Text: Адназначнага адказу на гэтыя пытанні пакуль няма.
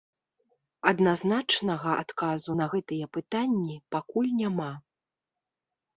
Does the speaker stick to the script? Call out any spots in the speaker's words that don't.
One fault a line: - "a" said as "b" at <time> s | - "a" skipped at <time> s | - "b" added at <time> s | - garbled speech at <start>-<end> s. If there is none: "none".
none